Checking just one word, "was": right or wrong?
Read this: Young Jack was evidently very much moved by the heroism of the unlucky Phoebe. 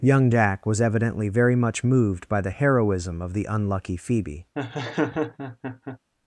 right